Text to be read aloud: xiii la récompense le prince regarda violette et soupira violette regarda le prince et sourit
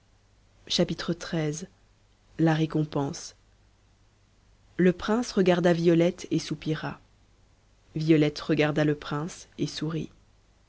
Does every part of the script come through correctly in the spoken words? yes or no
yes